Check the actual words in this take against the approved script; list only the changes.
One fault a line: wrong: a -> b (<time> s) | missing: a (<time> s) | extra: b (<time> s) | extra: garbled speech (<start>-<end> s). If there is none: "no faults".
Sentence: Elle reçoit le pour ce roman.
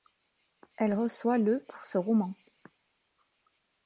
no faults